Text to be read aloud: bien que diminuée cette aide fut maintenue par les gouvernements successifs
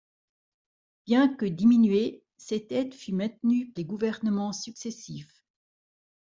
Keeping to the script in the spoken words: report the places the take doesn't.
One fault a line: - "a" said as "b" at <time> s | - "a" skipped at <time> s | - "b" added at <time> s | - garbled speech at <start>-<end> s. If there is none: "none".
- "par" skipped at 3.7 s